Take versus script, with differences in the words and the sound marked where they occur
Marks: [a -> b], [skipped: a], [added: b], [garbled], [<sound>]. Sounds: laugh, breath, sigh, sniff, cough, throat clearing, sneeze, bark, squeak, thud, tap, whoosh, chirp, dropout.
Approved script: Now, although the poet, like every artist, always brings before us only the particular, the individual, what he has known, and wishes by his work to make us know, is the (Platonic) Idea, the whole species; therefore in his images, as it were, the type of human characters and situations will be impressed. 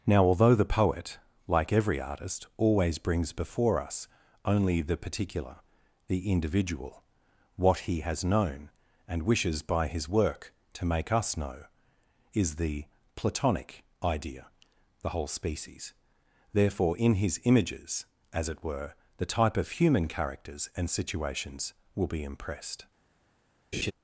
Now, although the poet, like every artist, always brings before us only the particular, the individual, what he has known, and wishes by his work to make us know, is the (Platonic) Idea, the whole species; therefore in his images, as it were, the type of human characters and situations will be impressed. [laugh]